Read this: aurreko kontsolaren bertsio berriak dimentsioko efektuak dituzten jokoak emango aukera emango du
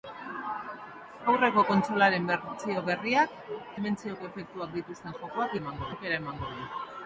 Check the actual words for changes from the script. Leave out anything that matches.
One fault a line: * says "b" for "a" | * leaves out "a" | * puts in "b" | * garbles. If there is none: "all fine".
all fine